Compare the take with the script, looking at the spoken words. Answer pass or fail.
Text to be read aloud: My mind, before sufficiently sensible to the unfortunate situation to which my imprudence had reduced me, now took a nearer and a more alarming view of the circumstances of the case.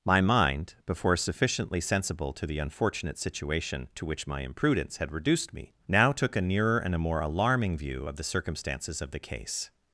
pass